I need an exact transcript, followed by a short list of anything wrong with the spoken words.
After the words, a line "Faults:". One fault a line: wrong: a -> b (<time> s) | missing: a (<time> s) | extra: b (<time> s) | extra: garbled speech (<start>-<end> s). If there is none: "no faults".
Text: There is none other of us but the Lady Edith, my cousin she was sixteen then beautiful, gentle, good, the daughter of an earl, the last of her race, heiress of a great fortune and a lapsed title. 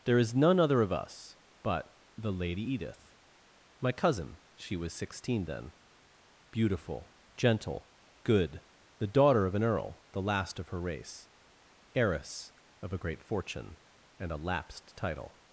There is none other of us but the Lady Edith, my cousin she was sixteen then beautiful, gentle, good, the daughter of an earl, the last of her race, heiress of a great fortune and a lapsed title.
Faults:
no faults